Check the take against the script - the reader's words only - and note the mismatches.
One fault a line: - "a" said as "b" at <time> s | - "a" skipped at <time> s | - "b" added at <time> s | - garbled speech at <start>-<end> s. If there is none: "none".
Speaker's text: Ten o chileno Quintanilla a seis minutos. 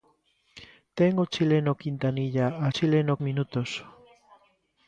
- "seis" said as "chileno" at 2.7 s